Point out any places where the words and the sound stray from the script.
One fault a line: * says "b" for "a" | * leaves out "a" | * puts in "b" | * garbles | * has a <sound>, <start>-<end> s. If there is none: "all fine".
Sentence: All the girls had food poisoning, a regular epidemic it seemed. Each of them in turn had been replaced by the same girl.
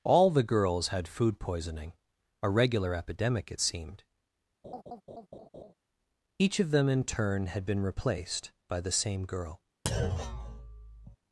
* has a laugh, 4.6-5.7 s
* has a thud, 9.9-11.2 s